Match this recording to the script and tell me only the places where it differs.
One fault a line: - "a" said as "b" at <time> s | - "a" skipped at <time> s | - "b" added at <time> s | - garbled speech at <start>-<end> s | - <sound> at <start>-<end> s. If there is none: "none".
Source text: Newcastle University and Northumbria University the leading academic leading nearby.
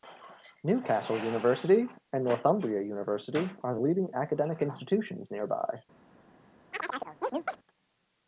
- "are" added at 3.6 s
- "leading" said as "institutions" at 4.6 s
- chirp at 6.7-7.6 s